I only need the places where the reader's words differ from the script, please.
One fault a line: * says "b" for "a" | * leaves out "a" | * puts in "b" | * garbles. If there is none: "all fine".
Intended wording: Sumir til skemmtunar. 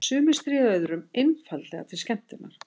* puts in "stríða öðrum einfaldlega"